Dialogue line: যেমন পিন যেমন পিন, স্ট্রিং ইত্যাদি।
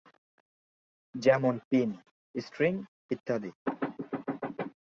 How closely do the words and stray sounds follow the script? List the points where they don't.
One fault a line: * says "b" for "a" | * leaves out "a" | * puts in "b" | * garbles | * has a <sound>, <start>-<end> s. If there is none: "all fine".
* leaves out "যেমন পিন"